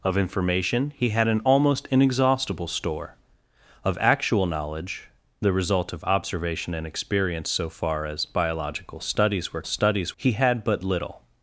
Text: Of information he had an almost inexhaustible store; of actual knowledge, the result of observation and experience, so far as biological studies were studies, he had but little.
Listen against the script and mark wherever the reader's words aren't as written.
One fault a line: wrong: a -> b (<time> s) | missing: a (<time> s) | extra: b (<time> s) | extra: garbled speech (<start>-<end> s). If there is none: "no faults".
no faults